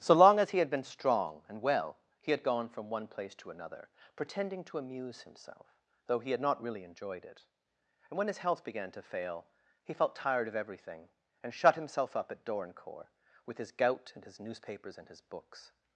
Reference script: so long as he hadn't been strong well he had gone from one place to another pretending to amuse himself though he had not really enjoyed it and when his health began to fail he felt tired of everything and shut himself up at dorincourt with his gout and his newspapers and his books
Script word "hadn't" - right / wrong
wrong